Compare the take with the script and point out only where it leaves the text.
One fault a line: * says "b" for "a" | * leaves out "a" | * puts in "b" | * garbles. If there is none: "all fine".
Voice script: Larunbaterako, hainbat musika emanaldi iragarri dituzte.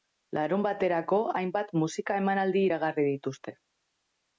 all fine